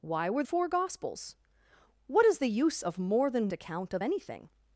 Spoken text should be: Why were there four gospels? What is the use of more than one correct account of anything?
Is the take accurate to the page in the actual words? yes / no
no